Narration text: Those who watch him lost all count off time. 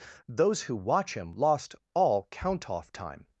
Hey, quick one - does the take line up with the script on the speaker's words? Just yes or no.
yes